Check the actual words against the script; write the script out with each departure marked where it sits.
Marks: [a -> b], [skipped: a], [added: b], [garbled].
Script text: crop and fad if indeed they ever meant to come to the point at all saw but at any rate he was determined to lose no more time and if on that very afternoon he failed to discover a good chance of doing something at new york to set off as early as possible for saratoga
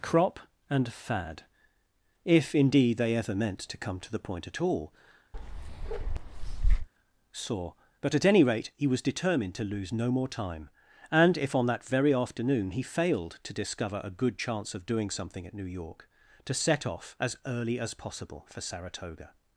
crop and fad if indeed they ever meant to come to the point at all saw but at any rate he was determined to lose no more time and if on that very afternoon he failed to discover a good chance of doing something at new york to set off as early as possible for saratoga